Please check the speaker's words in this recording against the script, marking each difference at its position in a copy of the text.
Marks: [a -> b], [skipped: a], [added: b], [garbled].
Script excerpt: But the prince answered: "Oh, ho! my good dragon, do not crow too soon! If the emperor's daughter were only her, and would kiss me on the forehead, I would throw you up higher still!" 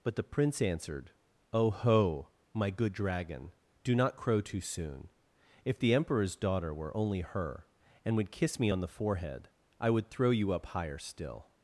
But the prince answered: "Oh, ho! my good dragon, do not crow too soon! If the emperor's daughter were only her, and would kiss me on the forehead, I would throw you up higher still!"